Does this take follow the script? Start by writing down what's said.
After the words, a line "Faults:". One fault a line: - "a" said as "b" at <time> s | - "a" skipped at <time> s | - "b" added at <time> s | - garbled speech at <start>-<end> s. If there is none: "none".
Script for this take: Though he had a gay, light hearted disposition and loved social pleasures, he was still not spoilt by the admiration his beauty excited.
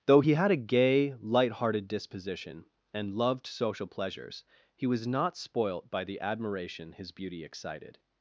Though he had a gay, light hearted disposition and loved social pleasures, he was not spoilt by the admiration his beauty excited.
Faults:
- "still" skipped at 5.1 s